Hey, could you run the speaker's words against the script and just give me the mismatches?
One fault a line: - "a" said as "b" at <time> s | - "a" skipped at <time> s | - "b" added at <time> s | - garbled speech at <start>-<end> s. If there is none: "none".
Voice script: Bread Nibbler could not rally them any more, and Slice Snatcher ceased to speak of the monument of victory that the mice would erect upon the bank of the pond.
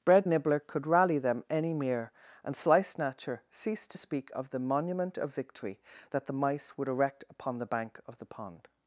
- "not" skipped at 0.9 s
- "more" said as "mere" at 1.7 s